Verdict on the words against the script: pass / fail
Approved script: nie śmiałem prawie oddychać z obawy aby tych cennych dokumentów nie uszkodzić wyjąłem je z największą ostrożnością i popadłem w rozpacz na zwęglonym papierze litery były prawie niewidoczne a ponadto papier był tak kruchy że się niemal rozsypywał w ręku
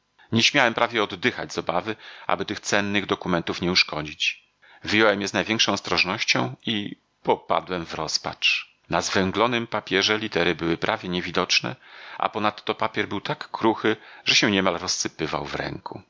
pass